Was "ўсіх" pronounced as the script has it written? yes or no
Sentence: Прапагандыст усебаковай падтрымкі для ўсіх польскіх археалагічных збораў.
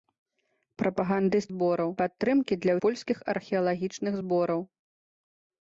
no